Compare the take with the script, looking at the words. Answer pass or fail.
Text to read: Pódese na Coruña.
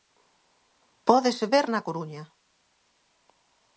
fail